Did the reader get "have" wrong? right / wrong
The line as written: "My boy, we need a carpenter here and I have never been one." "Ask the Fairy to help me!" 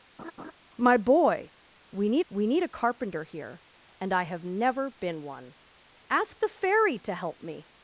right